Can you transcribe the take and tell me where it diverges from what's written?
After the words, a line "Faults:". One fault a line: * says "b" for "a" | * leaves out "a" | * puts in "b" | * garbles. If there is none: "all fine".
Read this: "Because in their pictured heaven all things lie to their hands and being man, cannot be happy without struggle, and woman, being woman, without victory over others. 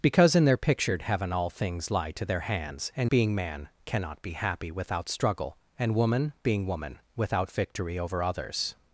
"Because in their pictured heaven all things lie to their hands and being man, cannot be happy without struggle, and woman, being woman, without victory over others.
Faults:
all fine